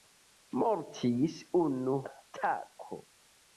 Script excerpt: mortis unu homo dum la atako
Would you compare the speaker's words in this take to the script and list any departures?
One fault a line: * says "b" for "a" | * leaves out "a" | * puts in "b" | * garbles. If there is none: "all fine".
* leaves out "homo dum la"